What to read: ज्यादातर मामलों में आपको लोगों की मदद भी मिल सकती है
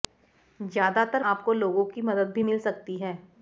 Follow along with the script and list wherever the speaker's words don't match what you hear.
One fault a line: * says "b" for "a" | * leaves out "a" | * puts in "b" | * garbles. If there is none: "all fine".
* leaves out "मामलों में"